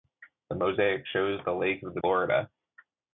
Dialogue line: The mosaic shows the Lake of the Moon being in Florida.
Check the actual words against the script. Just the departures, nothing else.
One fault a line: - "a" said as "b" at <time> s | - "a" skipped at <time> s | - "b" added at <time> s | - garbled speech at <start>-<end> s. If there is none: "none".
- "Moon being in" skipped at 2.0 s